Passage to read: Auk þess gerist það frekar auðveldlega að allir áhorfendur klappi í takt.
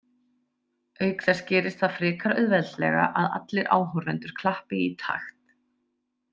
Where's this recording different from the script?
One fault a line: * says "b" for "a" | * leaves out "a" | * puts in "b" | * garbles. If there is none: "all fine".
all fine